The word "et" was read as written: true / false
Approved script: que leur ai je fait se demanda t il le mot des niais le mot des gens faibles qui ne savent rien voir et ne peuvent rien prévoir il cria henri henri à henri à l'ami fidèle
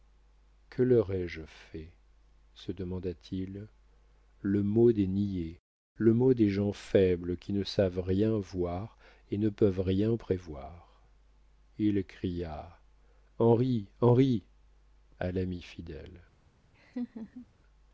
true